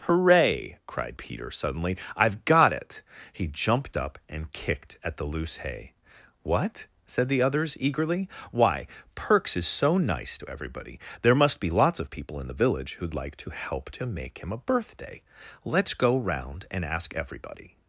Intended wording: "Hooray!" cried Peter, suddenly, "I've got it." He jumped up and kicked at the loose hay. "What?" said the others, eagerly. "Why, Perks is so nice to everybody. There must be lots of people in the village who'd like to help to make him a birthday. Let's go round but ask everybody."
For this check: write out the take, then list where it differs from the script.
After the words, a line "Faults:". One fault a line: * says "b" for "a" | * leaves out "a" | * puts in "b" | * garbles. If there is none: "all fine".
"Hooray!" cried Peter, suddenly, "I've got it." He jumped up and kicked at the loose hay. "What?" said the others, eagerly. "Why, Perks is so nice to everybody. There must be lots of people in the village who'd like to help to make him a birthday. Let's go round and ask everybody."
Faults:
* says "and" for "but"